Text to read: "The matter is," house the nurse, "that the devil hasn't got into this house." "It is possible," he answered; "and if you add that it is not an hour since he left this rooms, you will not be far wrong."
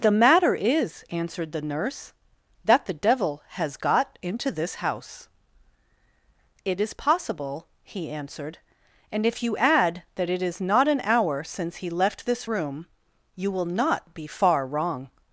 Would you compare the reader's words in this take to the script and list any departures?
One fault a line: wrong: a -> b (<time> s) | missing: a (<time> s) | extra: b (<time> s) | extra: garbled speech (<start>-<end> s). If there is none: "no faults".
wrong: house -> answered (1.1 s)
wrong: hasn't -> has (3.5 s)
wrong: rooms -> room (12.5 s)